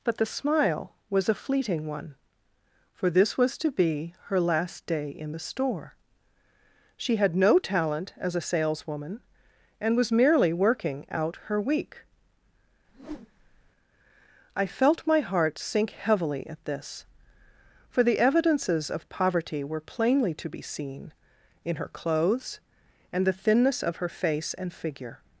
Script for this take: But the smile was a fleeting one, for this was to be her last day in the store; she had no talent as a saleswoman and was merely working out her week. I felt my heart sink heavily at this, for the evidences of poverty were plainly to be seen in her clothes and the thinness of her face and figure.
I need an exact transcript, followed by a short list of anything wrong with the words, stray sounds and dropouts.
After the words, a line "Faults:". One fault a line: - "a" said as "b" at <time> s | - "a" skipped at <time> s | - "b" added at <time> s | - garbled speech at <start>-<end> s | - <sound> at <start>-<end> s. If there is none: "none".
But the smile was a fleeting one, for this was to be her last day in the store; she had no talent as a saleswoman and was merely working out her week. I felt my heart sink heavily at this, for the evidences of poverty were plainly to be seen in her clothes and the thinness of her face and figure.
Faults:
- whoosh at 12.9-13.7 s